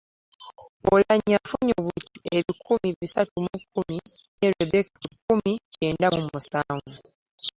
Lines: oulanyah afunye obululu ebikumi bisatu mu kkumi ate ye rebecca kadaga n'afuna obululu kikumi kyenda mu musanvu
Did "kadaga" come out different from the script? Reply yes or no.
yes